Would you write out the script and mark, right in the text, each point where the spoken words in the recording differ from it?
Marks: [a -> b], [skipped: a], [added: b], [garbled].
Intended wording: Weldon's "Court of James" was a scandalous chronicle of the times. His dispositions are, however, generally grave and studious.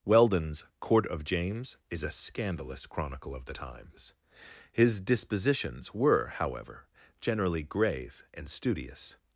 Weldon's "Court of James" [was -> is] a scandalous chronicle of the times. His dispositions [are, -> were] however, generally grave and studious.